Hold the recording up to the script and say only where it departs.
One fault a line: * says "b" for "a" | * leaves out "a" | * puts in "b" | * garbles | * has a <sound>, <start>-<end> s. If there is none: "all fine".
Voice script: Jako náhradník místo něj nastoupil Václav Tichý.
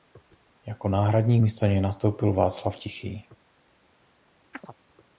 * has a chirp, 4.5-4.7 s